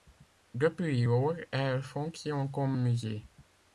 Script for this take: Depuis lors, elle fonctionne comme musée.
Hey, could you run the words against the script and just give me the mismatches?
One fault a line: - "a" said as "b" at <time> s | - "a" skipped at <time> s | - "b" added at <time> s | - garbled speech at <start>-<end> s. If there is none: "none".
none